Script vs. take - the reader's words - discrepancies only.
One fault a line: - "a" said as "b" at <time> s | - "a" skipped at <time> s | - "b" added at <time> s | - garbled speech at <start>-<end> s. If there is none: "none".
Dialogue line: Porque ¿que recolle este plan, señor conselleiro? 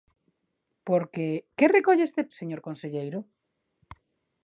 - "plan" skipped at 2.2 s